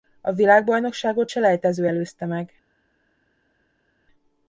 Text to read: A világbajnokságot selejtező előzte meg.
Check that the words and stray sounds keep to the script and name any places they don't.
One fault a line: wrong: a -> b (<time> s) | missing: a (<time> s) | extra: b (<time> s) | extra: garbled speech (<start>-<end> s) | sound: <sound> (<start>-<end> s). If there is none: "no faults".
no faults